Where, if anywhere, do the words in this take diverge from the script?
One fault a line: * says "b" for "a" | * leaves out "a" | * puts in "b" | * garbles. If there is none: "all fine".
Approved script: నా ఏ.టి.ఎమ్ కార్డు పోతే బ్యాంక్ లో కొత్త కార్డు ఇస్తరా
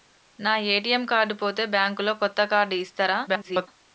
* garbles